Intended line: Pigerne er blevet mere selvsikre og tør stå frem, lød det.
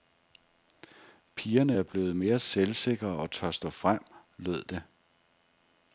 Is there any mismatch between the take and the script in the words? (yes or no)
no